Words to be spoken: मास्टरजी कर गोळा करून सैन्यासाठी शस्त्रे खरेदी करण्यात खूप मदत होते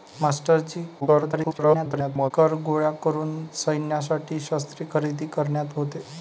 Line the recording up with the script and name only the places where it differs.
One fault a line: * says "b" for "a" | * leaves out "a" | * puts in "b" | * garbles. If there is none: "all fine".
* garbles
* leaves out "खूप मदत"